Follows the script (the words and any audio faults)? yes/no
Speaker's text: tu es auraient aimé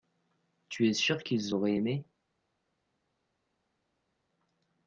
no